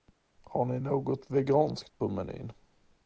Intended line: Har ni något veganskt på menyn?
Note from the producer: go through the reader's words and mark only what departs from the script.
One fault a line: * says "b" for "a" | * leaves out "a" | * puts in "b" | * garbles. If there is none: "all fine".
all fine